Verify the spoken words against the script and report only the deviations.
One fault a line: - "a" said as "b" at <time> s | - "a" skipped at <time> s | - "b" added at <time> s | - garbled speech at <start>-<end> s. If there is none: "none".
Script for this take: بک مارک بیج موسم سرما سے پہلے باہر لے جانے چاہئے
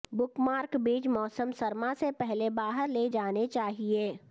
none